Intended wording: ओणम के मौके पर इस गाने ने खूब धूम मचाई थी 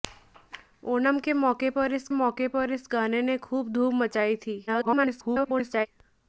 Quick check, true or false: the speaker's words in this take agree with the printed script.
false